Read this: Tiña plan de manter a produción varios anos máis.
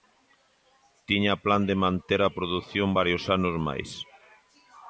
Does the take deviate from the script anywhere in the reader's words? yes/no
no